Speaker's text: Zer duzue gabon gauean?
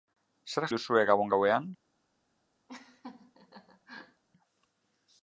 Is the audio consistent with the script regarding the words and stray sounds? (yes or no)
no